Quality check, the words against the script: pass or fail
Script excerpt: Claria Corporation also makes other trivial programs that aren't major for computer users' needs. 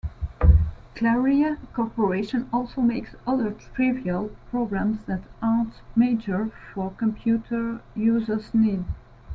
pass